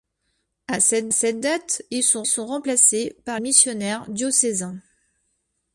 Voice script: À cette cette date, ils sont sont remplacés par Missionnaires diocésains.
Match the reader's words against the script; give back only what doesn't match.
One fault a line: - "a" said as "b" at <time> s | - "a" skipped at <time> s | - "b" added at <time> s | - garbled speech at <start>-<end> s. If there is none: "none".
none